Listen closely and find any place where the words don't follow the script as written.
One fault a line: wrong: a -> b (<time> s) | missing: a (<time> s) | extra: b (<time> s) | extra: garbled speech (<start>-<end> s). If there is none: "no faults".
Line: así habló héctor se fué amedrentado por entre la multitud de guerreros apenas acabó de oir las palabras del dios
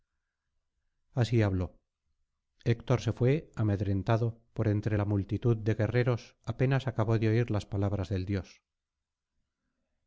no faults